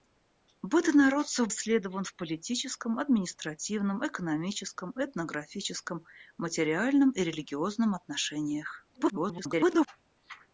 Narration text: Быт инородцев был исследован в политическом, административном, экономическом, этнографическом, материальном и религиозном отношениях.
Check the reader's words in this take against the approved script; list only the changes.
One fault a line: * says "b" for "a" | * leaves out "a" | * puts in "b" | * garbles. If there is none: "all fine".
* leaves out "был"
* garbles